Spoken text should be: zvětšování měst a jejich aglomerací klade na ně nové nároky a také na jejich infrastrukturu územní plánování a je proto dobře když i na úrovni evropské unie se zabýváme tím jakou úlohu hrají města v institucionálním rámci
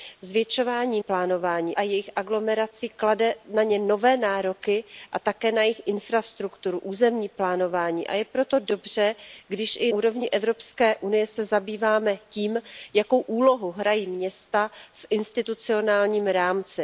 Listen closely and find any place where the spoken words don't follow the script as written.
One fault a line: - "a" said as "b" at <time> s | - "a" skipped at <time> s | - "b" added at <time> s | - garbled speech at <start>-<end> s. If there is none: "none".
- "měst" said as "plánování" at 1.0 s
- "na" skipped at 9.9 s